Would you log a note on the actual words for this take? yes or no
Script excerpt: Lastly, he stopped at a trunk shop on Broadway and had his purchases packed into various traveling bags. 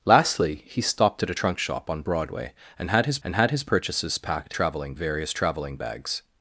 yes